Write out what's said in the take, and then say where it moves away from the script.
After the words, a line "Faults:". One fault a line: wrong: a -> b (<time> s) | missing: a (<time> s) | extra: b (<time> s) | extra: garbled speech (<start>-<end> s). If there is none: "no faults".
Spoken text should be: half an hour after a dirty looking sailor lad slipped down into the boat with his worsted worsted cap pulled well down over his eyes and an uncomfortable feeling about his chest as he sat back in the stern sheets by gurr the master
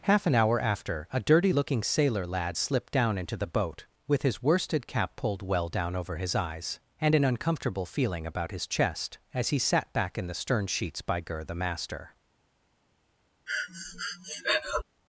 half an hour after a dirty looking sailor lad slipped down into the boat with his worsted cap pulled well down over his eyes and an uncomfortable feeling about his chest as he sat back in the stern sheets by gurr the master
Faults:
missing: worsted (4.9 s)